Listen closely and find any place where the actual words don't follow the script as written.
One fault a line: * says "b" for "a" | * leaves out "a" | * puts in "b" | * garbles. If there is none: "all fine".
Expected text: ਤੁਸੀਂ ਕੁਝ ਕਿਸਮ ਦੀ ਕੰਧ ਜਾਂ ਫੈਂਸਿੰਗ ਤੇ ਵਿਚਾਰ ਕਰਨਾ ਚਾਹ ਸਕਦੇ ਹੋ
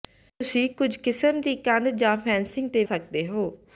* leaves out "ਵਿਚਾਰ ਕਰਨਾ ਚਾਹ"